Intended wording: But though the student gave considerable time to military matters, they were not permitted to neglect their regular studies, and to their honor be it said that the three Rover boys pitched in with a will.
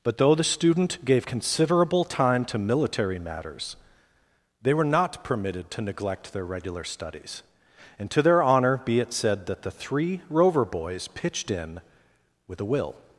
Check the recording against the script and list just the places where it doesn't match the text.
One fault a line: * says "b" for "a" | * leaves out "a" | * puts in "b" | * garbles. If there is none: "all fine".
all fine